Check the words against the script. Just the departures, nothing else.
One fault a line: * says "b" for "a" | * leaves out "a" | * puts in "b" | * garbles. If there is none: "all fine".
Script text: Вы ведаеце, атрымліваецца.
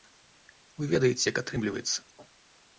* puts in "як"